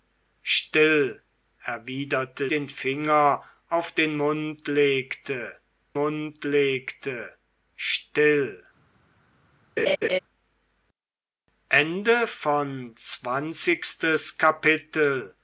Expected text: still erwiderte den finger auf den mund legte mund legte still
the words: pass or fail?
pass